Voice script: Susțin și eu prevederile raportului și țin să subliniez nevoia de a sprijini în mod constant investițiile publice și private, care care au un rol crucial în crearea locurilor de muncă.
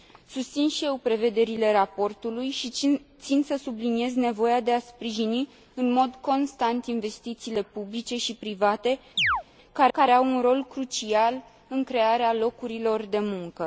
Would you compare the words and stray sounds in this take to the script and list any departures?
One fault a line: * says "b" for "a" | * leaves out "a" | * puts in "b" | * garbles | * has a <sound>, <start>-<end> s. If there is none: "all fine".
* has a chirp, 9.2-9.4 s